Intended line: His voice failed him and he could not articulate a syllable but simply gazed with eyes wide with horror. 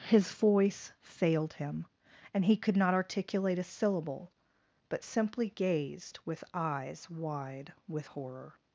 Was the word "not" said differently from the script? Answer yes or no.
no